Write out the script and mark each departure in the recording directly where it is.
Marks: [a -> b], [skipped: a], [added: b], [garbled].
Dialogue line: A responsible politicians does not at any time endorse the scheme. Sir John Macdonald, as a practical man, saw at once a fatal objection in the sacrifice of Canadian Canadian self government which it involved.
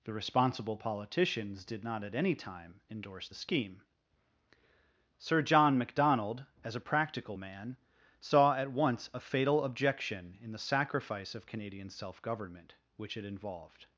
[A -> The] responsible politicians [does -> did] not at any time endorse the scheme. Sir John Macdonald, as a practical man, saw at once a fatal objection in the sacrifice of Canadian [skipped: Canadian] self government which it involved.